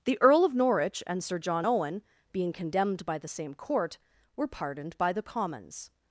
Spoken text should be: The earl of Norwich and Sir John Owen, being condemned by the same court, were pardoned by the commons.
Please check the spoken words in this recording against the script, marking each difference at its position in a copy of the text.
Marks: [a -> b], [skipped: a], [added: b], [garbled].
The earl of Norwich and Sir John Owen, being condemned by the same court, were pardoned by the commons.